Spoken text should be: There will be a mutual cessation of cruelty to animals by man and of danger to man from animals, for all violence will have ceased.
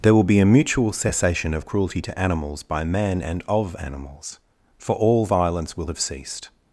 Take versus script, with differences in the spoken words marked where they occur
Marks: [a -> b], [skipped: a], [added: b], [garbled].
There will be a mutual cessation of cruelty to animals by man and of [skipped: danger to man from] animals, for all violence will have ceased.